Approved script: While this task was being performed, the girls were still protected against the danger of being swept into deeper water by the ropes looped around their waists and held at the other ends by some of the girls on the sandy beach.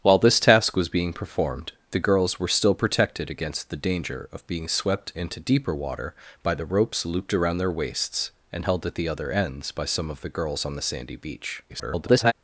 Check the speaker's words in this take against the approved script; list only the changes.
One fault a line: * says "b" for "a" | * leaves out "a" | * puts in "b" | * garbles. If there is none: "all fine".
* garbles